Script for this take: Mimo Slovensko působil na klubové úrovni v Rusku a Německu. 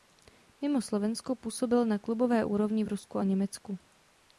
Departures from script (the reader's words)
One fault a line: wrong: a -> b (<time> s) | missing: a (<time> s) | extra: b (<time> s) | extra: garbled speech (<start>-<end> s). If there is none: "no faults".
no faults